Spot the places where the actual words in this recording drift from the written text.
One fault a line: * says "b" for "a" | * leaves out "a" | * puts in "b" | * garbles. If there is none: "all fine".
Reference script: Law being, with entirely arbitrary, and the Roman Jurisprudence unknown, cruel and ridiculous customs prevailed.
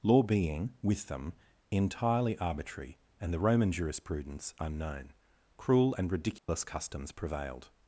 * puts in "them"